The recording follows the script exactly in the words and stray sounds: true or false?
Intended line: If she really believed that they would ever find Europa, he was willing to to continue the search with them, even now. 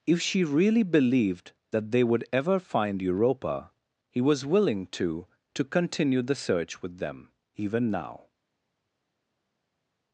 true